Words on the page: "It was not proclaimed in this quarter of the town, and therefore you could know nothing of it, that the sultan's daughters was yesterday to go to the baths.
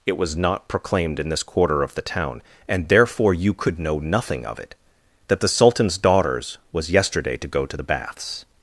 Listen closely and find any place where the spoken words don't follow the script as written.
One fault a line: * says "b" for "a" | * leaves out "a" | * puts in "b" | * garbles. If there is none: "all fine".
all fine